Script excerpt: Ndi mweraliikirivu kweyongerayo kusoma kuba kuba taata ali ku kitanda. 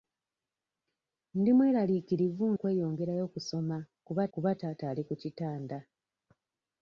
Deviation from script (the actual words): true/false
false